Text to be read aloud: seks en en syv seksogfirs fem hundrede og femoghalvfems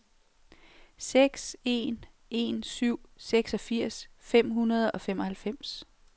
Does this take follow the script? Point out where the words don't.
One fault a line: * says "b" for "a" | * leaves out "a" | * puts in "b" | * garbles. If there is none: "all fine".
all fine